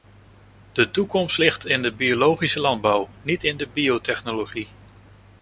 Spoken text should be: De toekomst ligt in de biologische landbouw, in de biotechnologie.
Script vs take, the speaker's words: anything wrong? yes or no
yes